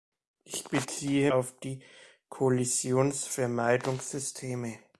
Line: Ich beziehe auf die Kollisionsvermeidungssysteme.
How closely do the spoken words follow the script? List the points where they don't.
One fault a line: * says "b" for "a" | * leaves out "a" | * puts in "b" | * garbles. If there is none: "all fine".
all fine